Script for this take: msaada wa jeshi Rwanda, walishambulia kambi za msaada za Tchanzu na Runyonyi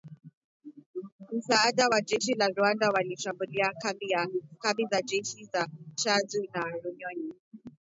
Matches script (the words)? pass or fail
fail